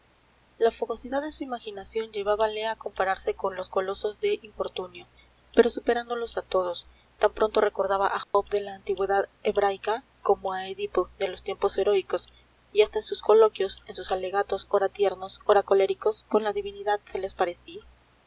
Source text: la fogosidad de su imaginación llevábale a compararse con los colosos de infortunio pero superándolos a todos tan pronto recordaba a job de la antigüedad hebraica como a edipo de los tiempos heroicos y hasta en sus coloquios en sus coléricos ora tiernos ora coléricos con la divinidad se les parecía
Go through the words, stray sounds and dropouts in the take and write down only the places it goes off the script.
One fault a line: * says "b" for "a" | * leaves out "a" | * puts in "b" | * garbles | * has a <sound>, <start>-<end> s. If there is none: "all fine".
* has a dropout, 8.2-8.3 s
* says "alegatos" for "coléricos"